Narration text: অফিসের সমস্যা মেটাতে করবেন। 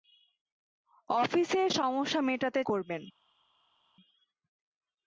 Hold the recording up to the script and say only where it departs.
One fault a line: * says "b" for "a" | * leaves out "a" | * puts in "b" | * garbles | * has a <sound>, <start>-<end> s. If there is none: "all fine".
all fine